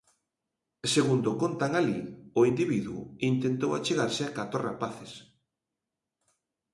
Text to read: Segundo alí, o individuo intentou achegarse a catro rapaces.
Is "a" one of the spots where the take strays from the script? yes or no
no